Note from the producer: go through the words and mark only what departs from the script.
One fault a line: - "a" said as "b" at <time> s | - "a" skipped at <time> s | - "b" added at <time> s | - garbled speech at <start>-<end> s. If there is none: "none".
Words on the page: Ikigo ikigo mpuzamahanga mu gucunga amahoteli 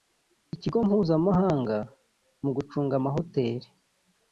- "ikigo" skipped at 0.8 s